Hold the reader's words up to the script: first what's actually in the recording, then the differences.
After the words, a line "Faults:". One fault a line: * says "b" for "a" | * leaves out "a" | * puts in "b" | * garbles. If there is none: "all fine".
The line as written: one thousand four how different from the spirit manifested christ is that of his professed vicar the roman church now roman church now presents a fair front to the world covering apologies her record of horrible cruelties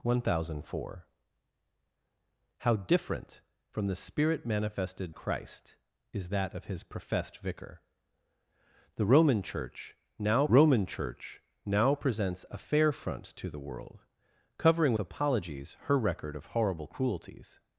one thousand four how different from the spirit manifested christ is that of his professed vicar the roman church now roman church now presents a fair front to the world covering apologies her record of horrible cruelties
Faults:
all fine